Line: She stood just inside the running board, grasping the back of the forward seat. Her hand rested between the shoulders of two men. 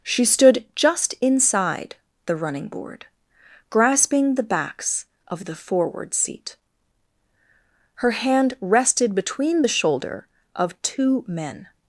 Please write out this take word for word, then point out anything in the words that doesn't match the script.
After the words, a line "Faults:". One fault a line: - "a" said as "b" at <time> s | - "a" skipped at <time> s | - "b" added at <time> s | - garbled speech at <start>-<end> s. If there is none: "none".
She stood just inside the running board, grasping the backs of the forward seat. Her hand rested between the shoulder of two men.
Faults:
- "back" said as "backs" at 4.4 s
- "shoulders" said as "shoulder" at 9.7 s